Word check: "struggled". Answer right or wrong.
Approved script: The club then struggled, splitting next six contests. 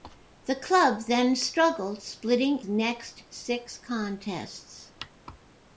right